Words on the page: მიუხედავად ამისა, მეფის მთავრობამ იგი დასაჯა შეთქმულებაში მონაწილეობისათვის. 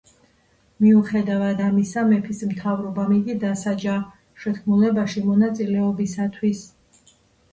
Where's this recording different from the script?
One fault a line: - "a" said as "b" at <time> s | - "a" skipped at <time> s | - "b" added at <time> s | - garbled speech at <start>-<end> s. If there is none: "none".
none